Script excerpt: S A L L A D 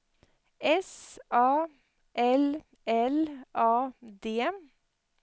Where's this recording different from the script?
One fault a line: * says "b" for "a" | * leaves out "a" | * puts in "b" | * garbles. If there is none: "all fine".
all fine